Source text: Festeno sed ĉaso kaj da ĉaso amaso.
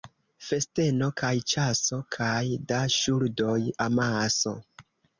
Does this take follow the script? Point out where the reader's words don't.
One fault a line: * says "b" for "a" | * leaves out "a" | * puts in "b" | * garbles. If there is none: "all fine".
* says "kaj" for "sed"
* says "ŝuldoj" for "ĉaso"